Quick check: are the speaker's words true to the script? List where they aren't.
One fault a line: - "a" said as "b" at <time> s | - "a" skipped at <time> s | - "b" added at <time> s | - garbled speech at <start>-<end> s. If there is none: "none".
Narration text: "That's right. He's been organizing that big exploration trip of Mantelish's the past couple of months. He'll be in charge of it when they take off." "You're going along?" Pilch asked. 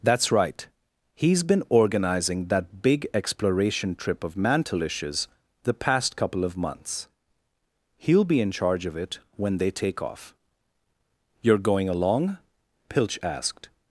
none